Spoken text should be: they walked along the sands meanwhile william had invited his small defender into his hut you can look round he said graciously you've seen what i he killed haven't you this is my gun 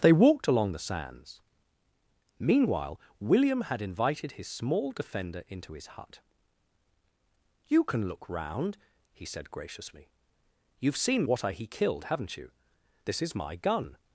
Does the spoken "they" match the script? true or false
true